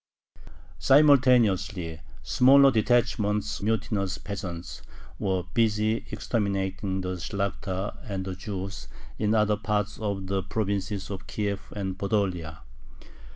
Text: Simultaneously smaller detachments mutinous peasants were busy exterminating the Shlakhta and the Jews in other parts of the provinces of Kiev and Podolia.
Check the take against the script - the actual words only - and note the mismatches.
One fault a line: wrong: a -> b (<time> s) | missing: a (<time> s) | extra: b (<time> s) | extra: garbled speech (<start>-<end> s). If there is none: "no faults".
no faults